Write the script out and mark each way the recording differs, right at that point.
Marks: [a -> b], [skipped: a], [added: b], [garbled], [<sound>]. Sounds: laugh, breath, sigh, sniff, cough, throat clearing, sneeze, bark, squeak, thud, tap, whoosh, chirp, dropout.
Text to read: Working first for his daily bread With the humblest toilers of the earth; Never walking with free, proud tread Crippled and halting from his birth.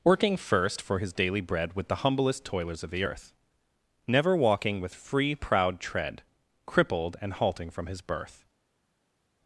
Working first for his daily bread With the humblest toilers of the earth; Never walking with free, proud tread Crippled and halting from his birth.